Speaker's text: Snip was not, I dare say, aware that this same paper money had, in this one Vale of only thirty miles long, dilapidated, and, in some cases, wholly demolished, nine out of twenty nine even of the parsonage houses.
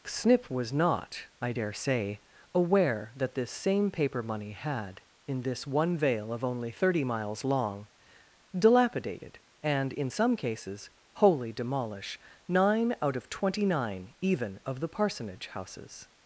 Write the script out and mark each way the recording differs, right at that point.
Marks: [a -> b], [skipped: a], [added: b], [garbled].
Snip was not, I dare say, aware that this same paper money had, in this one Vale of only thirty miles long, dilapidated, and, in some cases, wholly [demolished, -> demolish] nine out of twenty nine even of the parsonage houses.